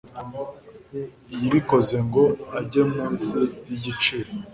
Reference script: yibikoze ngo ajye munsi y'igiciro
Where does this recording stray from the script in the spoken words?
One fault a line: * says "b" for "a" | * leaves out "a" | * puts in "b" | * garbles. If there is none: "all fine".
all fine